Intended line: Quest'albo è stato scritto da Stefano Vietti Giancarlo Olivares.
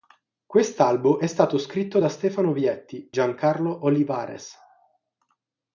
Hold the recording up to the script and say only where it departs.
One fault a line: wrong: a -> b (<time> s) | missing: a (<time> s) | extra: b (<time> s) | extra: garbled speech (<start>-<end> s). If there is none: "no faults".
no faults